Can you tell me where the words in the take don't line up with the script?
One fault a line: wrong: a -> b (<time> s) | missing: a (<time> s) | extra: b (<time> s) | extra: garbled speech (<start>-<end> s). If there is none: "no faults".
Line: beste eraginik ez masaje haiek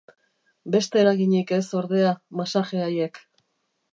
extra: ordea (1.8 s)